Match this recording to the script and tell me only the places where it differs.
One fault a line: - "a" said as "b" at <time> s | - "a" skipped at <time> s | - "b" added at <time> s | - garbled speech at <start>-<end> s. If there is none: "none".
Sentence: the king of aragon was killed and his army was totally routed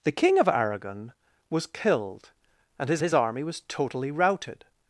- "his" added at 3.0 s